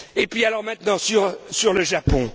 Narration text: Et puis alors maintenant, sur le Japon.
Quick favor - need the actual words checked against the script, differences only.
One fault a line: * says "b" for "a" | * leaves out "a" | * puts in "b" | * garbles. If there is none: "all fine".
all fine